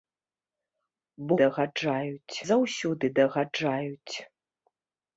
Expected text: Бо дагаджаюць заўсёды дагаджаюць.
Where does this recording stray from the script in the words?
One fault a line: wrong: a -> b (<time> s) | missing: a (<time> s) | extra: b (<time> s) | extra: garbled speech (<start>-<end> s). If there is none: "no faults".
no faults